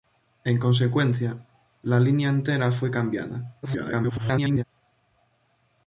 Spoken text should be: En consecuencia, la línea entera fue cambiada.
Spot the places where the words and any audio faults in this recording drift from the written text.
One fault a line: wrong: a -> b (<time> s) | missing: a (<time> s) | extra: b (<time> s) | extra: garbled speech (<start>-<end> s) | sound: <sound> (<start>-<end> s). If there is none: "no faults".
extra: garbled speech (3.6-4.6 s)